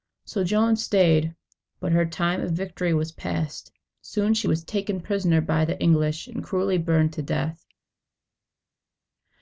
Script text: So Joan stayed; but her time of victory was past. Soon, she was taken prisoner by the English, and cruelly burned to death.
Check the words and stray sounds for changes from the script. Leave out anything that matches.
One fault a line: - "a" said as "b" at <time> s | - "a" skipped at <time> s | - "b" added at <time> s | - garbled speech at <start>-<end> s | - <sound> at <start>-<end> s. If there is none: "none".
none